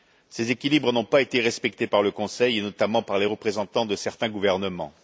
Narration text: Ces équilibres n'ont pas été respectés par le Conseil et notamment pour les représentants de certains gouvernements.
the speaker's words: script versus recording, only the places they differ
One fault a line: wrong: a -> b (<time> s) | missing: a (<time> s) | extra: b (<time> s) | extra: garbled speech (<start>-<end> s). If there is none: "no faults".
wrong: pour -> par (3.0 s)